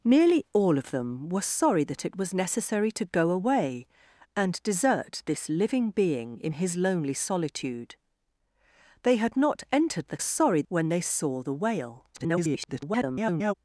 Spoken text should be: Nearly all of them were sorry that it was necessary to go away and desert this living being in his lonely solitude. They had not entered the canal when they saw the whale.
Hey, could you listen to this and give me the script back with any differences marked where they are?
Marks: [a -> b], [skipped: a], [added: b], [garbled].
Nearly all of them were sorry that it was necessary to go away and desert this living being in his lonely solitude. They had not entered the [canal -> sorry] when they saw the whale. [garbled]